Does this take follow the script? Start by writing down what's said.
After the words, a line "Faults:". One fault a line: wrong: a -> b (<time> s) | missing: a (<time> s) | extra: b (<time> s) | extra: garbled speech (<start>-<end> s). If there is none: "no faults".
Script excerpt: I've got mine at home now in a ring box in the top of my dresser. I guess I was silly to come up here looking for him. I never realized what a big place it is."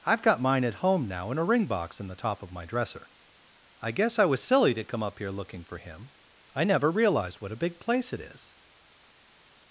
I've got mine at home now in a ring box in the top of my dresser. I guess I was silly to come up here looking for him. I never realized what a big place it is."
Faults:
no faults